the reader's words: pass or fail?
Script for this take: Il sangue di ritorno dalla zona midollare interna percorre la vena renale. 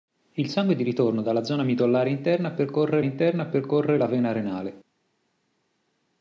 fail